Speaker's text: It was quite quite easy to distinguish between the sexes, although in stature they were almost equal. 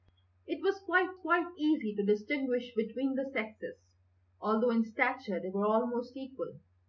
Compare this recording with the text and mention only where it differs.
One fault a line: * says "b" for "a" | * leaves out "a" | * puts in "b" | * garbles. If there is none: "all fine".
all fine